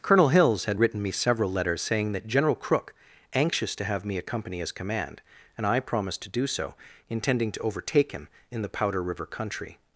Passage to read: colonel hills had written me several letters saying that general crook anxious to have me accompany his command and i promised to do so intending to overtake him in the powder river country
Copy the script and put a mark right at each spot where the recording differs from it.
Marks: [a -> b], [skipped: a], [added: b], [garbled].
colonel hills had written me several letters saying that general crook anxious to have me accompany his command and i promised to do so intending to overtake him in the powder river country